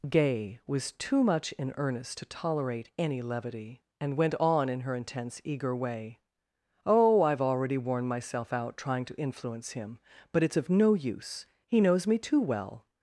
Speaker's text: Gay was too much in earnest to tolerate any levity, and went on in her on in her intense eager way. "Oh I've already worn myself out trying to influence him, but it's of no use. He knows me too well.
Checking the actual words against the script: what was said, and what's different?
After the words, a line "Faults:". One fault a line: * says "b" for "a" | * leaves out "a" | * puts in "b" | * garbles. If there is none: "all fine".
Gay was too much in earnest to tolerate any levity, and went on in her intense eager way. "Oh I've already worn myself out trying to influence him, but it's of no use. He knows me too well.
Faults:
* leaves out "on in her"